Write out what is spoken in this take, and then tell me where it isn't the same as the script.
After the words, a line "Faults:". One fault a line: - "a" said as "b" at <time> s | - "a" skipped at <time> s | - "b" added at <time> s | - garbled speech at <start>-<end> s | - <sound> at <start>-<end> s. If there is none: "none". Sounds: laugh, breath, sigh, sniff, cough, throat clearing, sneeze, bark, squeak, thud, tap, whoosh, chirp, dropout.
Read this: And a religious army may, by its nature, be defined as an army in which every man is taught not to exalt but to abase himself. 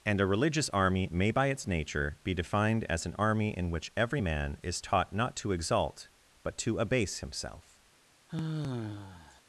And a religious army may, by its nature, be defined as an army in which every man is taught not to exalt but to abase himself.
Faults:
- sigh at 8.3-9.4 s